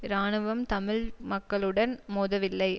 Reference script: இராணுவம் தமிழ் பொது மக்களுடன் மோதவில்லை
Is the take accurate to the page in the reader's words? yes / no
no